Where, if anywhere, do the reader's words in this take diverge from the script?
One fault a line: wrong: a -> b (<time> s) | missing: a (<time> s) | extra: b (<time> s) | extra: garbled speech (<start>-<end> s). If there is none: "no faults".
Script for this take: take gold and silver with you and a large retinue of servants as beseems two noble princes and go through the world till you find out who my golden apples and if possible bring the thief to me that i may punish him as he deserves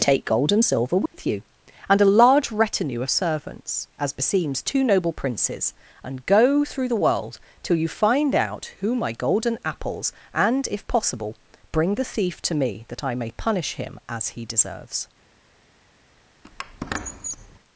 no faults